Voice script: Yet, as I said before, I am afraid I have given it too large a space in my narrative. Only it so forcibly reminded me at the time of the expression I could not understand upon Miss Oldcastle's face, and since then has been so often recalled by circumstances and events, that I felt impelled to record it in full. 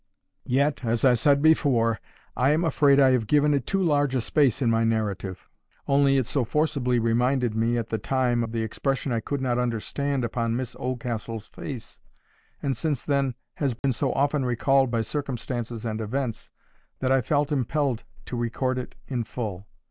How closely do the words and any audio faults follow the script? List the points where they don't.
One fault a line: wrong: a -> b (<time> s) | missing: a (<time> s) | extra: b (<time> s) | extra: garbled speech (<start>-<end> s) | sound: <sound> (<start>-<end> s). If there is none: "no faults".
sound: dropout (13.8-13.8 s)